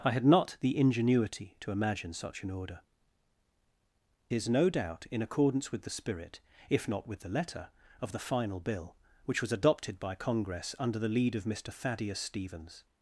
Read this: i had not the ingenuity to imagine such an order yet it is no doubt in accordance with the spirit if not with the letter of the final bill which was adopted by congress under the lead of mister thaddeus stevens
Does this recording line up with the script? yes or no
no